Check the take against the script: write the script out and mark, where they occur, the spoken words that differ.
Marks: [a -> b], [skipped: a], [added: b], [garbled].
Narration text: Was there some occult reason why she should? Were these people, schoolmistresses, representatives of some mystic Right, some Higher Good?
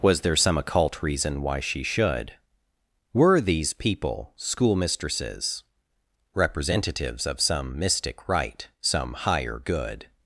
Was there some occult reason why she should? Were these people, schoolmistresses, representatives of some mystic Right, some Higher Good?